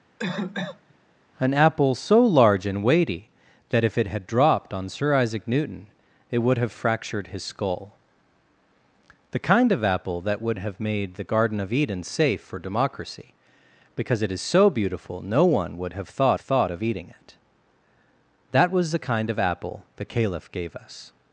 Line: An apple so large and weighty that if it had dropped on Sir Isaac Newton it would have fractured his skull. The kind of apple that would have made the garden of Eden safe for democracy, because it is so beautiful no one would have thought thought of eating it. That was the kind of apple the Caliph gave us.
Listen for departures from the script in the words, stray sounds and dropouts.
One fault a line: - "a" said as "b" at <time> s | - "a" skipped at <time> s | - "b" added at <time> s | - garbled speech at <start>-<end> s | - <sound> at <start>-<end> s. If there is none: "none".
- cough at 0.2-0.9 s